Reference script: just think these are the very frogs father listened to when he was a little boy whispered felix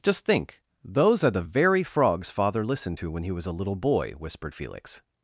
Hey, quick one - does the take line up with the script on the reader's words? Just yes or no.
no